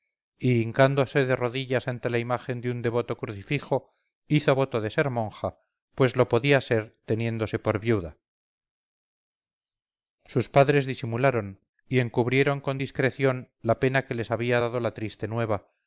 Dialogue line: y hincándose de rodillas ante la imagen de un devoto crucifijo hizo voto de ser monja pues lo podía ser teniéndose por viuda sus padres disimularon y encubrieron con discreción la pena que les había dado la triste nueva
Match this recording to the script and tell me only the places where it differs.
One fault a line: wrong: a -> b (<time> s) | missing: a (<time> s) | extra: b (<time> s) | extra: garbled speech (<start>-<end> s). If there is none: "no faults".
no faults